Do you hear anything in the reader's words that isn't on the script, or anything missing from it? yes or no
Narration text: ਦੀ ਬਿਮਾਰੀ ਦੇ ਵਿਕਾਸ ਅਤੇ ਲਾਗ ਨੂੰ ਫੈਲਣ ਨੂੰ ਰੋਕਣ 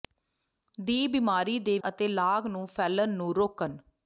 yes